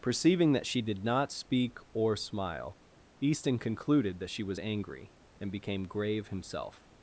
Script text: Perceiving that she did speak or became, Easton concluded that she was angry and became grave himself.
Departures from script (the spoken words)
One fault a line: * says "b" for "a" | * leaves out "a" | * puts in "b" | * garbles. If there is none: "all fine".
* puts in "not"
* says "smile" for "became"